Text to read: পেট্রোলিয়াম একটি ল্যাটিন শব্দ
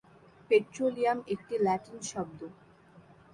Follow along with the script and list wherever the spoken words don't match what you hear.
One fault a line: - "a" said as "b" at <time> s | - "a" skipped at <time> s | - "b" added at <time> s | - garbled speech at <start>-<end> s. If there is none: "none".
none